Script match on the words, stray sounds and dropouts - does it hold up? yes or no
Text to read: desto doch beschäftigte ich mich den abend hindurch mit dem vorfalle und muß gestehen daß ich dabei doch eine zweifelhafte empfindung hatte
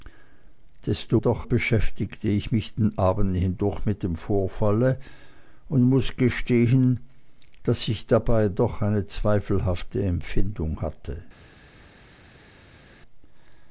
yes